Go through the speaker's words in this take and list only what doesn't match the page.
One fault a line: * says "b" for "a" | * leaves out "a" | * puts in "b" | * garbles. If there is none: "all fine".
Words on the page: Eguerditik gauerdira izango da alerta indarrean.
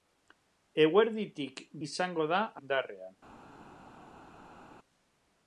* leaves out "gauerdira"
* leaves out "alerta"